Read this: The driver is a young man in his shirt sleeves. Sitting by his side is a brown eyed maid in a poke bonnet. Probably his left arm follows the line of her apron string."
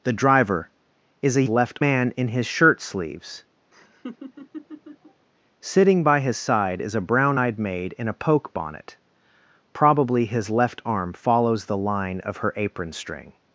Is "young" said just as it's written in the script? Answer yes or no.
no